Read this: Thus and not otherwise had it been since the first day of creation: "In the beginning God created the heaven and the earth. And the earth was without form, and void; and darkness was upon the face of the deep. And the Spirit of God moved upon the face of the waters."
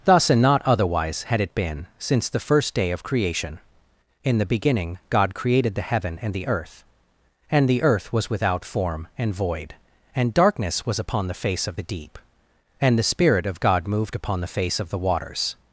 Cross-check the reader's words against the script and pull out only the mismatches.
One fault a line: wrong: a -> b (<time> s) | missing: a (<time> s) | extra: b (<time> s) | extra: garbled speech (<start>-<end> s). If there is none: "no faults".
no faults